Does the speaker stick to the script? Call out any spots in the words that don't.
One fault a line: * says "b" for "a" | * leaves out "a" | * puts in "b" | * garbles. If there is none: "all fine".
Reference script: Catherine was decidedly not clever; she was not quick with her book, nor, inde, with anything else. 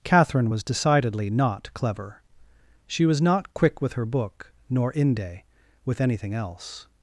all fine